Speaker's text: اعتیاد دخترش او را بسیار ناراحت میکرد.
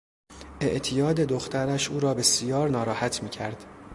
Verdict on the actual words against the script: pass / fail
pass